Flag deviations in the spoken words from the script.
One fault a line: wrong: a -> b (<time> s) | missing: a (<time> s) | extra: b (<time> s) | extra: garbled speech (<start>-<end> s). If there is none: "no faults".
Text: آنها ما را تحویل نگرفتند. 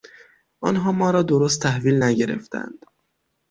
extra: درست (1.2 s)